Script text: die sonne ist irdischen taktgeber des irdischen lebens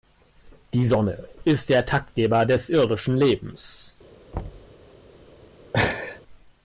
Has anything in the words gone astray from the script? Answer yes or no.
yes